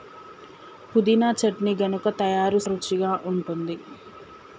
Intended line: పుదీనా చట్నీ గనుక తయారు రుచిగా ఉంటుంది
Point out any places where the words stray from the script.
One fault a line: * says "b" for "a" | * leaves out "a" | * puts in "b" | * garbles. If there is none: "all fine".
all fine